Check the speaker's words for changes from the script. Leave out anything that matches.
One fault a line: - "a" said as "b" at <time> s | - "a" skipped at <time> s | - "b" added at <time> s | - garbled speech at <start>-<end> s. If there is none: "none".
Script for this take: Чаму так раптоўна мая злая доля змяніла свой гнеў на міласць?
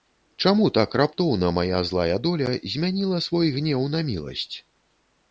none